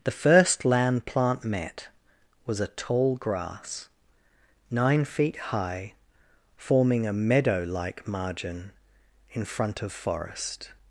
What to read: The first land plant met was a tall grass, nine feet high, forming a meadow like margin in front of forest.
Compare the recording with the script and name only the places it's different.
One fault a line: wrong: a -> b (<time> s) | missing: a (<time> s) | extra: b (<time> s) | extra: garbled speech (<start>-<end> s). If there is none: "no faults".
no faults